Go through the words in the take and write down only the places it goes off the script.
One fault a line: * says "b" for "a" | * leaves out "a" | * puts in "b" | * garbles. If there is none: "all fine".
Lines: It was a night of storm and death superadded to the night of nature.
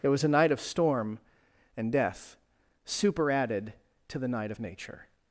all fine